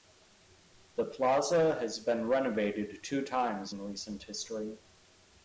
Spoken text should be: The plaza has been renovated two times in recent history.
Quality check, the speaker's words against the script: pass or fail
pass